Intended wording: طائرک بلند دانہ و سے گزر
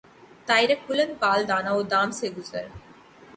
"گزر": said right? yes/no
yes